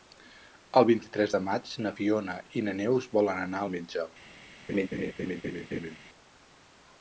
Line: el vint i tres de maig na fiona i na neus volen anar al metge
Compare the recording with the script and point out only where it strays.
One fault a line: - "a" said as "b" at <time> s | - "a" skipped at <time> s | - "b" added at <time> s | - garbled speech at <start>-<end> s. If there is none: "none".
none